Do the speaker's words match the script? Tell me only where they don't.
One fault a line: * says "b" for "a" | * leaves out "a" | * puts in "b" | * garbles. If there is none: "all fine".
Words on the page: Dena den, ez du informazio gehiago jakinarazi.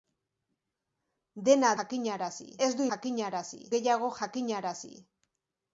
* says "jakinarazi" for "den"
* says "jakinarazi" for "informazio"